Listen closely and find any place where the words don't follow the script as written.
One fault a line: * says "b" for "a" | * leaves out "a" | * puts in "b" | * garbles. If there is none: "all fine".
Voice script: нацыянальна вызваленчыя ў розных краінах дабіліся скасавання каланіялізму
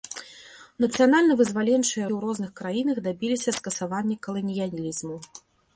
all fine